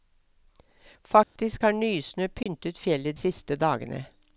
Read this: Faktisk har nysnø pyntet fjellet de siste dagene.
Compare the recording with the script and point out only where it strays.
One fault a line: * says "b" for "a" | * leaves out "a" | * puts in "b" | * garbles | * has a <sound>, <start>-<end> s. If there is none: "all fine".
* has a dropout, 1.2-1.4 s
* has a dropout, 2.4-2.5 s
* leaves out "de"